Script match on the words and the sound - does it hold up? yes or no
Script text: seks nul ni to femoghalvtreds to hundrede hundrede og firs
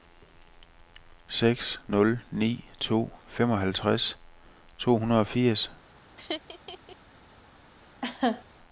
no